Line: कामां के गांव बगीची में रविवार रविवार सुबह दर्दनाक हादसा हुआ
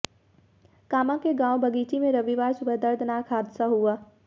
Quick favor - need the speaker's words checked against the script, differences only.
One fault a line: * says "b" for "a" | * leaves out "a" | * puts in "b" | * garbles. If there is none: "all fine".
* leaves out "रविवार"